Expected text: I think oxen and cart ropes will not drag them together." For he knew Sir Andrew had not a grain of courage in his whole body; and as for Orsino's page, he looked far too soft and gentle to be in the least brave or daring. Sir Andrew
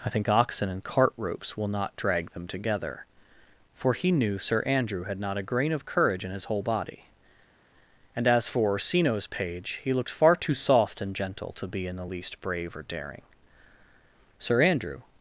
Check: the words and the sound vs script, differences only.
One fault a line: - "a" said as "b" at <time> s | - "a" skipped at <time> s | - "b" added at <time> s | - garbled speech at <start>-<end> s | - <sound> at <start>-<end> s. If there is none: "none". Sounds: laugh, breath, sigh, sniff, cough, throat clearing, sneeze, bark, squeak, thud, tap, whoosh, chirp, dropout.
none